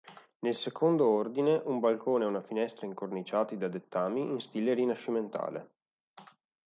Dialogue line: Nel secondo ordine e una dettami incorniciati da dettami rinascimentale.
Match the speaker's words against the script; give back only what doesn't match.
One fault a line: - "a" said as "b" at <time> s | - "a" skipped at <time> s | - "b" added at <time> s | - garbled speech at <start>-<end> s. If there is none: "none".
- "un balcone" added at 1.6 s
- "dettami" said as "finestra" at 2.4 s
- "in stile" added at 4.2 s